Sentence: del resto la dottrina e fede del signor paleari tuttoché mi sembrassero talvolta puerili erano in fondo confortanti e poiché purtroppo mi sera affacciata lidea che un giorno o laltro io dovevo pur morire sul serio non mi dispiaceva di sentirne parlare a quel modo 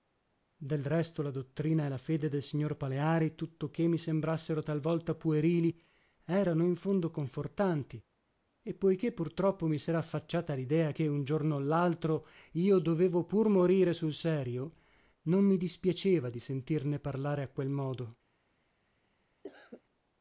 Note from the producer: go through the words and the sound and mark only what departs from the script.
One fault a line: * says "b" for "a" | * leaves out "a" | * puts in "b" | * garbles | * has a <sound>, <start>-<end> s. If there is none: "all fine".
* puts in "la"
* has a cough, 19.4-19.8 s